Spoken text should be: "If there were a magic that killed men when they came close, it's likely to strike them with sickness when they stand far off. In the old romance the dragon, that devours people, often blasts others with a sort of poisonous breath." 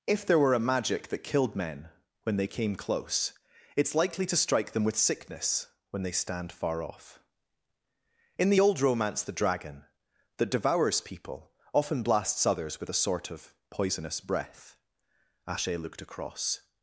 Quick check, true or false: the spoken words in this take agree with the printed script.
false